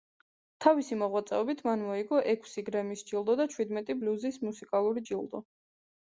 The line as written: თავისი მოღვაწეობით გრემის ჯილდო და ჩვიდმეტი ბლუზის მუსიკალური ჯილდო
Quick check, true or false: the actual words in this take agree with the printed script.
false